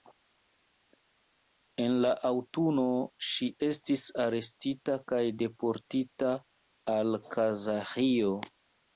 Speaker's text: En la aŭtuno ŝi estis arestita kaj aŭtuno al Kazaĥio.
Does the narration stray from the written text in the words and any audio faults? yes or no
yes